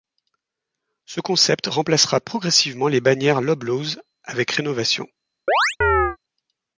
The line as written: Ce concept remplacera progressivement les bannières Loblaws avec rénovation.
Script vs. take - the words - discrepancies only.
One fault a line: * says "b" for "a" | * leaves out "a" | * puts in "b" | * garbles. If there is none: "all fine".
all fine